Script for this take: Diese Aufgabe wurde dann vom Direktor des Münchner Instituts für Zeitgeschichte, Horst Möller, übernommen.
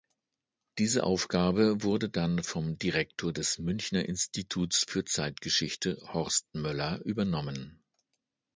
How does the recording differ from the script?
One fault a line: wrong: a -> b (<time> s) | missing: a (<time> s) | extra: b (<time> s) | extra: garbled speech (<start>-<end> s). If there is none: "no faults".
no faults